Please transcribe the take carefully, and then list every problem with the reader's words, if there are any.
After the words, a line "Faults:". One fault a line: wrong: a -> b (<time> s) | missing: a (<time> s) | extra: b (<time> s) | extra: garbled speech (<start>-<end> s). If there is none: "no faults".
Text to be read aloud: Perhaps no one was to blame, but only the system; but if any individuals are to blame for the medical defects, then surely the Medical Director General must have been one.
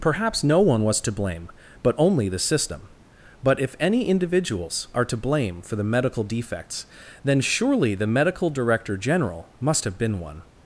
Perhaps no one was to blame, but only the system; but if any individuals are to blame for the medical defects, then surely the Medical Director General must have been one.
Faults:
no faults